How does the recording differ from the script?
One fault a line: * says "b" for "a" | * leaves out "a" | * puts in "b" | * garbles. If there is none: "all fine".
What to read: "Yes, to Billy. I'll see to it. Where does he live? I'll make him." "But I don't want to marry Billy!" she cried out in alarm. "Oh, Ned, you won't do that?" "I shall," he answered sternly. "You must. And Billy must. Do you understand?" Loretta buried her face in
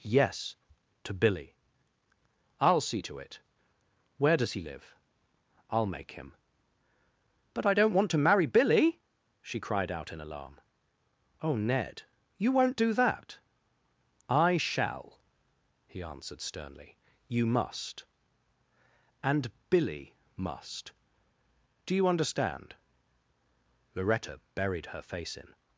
all fine